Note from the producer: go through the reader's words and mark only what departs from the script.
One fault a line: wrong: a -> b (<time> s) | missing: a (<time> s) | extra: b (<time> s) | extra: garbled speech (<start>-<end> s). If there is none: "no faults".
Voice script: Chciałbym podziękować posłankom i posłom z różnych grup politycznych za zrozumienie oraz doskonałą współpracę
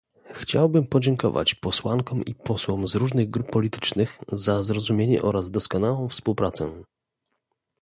no faults